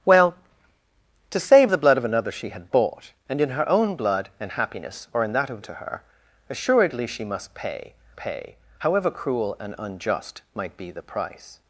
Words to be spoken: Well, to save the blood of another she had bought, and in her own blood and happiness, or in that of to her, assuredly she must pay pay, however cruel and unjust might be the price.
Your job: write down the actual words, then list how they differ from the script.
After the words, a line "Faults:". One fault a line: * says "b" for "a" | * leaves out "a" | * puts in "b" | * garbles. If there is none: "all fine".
Well, to save the blood of another she had bought, and in her own blood and happiness, or in that of to her, assuredly she must pay pay, however cruel and unjust might be the price.
Faults:
all fine